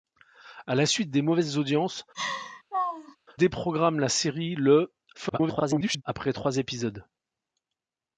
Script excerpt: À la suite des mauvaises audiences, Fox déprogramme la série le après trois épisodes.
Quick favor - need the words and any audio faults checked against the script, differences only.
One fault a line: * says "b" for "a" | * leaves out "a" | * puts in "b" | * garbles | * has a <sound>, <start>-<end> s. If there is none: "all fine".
* leaves out "Fox"
* has a laugh, 2.1-3.2 s
* garbles